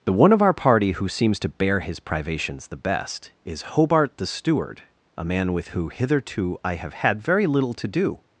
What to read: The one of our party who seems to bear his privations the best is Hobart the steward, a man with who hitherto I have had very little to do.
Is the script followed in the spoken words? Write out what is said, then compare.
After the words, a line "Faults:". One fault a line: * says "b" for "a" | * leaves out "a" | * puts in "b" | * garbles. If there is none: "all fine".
The one of our party who seems to bear his privations the best is Hobart the steward, a man with who hitherto I have had very little to do.
Faults:
all fine